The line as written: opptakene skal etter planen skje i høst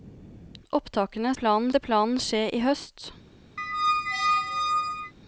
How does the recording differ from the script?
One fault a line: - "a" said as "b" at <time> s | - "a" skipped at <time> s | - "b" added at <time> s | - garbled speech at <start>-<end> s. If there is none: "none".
- "skal" said as "planen" at 1.4 s